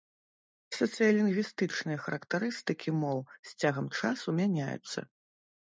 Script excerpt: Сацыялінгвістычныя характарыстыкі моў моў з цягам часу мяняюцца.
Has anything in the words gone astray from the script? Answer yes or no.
yes